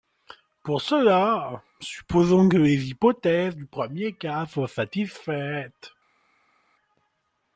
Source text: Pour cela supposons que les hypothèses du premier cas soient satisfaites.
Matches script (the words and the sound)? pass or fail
pass